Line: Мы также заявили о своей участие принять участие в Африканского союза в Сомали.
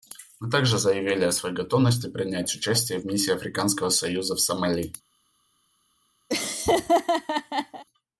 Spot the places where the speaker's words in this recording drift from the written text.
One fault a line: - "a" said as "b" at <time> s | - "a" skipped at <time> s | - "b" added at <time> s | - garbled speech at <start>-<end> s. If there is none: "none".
- "участие" said as "готовности" at 1.5 s
- "Миссии" added at 3.0 s